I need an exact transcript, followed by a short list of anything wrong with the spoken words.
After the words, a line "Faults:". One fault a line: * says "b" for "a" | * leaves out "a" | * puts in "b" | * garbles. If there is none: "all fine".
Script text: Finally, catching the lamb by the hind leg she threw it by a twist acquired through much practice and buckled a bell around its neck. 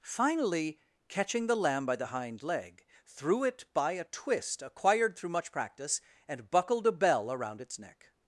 Finally, catching the lamb by the hind leg threw it by a twist acquired through much practice and buckled a bell around its neck.
Faults:
* leaves out "she"